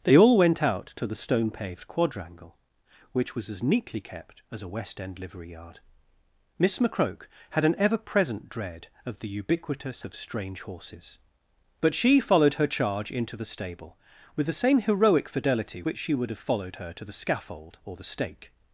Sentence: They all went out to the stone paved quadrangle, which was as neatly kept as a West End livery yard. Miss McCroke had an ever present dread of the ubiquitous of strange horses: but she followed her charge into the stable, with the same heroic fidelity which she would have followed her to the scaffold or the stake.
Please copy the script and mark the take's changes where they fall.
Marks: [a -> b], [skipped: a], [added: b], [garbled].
They all went out to the stone paved quadrangle, which was as neatly kept as a West End livery yard. Miss McCroke had an ever present dread of the ubiquitous of strange horses: but she followed her charge into the stable, with the same heroic fidelity which she would have followed her to the scaffold or the stake.